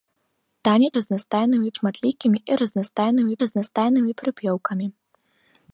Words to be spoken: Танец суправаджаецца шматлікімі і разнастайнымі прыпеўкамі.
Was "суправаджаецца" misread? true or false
true